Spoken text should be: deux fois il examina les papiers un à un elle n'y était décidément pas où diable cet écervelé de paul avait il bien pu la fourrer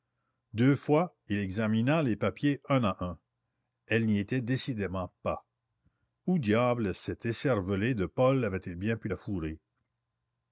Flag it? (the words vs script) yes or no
no